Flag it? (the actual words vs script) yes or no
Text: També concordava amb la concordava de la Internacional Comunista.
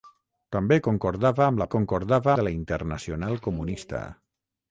no